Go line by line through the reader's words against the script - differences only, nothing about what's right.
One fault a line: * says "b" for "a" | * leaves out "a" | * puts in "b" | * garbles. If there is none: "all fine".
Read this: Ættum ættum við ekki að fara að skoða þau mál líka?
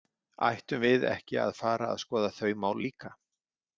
* leaves out "ættum"